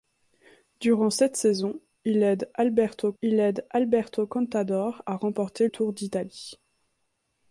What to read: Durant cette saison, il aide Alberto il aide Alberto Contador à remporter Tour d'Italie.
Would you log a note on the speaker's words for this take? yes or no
no